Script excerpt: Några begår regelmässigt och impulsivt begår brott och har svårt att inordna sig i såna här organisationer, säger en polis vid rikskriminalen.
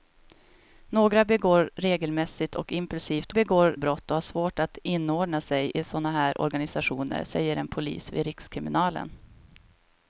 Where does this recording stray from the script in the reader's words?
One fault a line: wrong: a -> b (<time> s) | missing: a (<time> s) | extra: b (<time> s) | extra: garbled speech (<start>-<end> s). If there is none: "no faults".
no faults